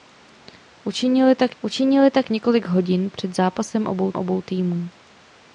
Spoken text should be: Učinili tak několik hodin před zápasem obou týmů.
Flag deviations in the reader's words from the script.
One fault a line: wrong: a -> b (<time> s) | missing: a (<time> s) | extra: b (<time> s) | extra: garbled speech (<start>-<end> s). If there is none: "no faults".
extra: učinili tak (1.6 s)
extra: obou (4.2 s)